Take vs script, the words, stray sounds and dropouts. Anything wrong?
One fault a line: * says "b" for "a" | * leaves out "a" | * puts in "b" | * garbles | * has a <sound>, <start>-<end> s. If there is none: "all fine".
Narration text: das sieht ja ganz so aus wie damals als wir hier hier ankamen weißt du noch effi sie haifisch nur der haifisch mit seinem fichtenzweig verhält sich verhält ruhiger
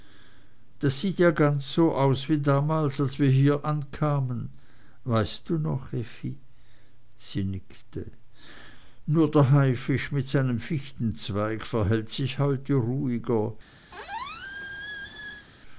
* leaves out "hier"
* says "nickte" for "haifisch"
* says "heute" for "verhält"
* has a squeak, 13.9-15.5 s